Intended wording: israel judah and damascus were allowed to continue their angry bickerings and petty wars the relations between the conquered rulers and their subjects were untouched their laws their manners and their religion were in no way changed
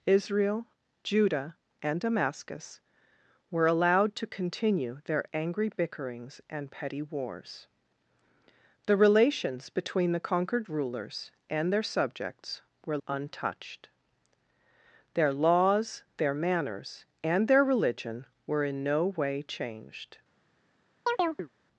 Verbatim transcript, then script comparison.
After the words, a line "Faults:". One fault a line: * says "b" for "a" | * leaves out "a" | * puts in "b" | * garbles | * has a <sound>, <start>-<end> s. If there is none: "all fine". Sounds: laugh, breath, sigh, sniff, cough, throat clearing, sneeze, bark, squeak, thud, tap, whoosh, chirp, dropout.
israel judah and damascus were allowed to continue their angry bickerings and petty wars the relations between the conquered rulers and their subjects were untouched their laws their manners and their religion were in no way changed
Faults:
* has a chirp, 21.1-21.5 s